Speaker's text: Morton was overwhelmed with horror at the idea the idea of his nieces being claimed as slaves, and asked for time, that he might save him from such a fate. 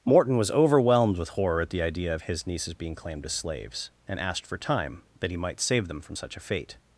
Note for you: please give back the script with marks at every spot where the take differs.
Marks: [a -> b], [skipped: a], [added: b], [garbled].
Morton was overwhelmed with horror at the idea [skipped: the idea] of his nieces being claimed as slaves, and asked for time, that he might save [him -> them] from such a fate.